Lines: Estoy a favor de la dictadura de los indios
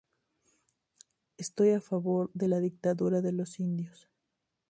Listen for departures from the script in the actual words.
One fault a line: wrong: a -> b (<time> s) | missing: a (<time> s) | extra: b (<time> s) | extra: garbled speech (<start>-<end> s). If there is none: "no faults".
no faults